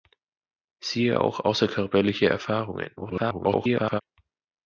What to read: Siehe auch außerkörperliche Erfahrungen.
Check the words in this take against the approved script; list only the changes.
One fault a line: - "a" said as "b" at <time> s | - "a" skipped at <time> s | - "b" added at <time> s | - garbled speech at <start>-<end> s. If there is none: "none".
- garbled speech at 3.0-4.0 s